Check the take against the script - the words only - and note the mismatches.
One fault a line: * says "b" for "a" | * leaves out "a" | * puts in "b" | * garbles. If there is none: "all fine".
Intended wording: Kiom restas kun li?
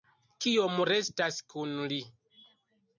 all fine